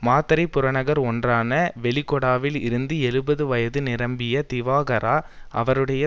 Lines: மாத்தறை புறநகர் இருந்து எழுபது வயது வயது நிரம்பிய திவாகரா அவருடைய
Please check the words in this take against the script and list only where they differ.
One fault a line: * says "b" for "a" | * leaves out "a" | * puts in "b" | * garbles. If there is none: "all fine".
* puts in "ஒன்றான வெலிகொடாவில்"
* leaves out "வயது"